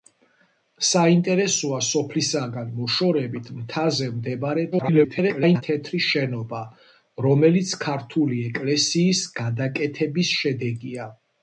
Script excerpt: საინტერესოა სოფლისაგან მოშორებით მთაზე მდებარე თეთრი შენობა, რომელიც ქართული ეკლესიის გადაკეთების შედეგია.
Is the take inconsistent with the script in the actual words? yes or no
yes